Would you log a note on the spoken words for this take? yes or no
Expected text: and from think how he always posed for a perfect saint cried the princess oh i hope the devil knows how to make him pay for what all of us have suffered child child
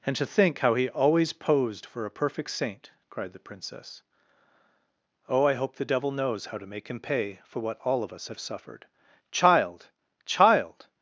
yes